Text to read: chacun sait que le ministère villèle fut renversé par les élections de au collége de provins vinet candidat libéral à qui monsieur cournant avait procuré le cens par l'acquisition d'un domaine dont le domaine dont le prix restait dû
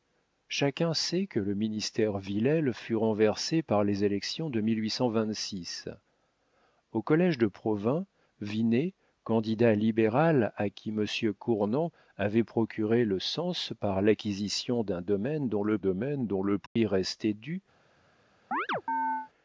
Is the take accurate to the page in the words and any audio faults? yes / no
no